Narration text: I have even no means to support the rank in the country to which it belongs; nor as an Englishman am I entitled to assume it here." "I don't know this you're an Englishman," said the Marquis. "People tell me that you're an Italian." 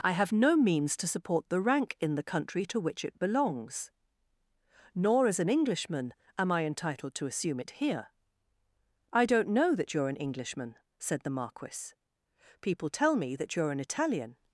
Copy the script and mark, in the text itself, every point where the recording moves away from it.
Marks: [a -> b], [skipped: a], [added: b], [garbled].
I have [skipped: even] no means to support the rank in the country to which it belongs; nor as an Englishman am I entitled to assume it here." "I don't know [this -> that] you're an Englishman," said the Marquis. "People tell me that you're an Italian."